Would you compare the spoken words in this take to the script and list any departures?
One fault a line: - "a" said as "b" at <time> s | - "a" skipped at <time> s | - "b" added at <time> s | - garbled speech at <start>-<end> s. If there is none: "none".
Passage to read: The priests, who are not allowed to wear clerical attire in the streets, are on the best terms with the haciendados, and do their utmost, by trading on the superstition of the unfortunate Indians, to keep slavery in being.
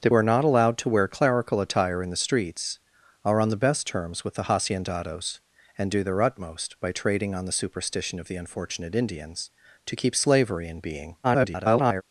- "priests who" skipped at 0.1 s
- garbled speech at 11.2-12.0 s